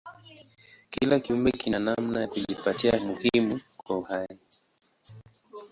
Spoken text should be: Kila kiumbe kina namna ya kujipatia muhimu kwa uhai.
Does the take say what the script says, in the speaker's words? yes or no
yes